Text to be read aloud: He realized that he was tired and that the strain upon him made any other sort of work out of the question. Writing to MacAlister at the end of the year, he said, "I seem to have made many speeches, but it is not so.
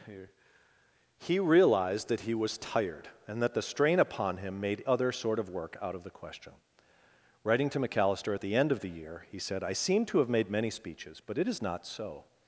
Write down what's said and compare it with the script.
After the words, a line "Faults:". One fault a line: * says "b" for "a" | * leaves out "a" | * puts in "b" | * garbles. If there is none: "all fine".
He realized that he was tired and that the strain upon him made other sort of work out of the question. Writing to MacAlister at the end of the year, he said, "I seem to have made many speeches, but it is not so.
Faults:
* leaves out "any"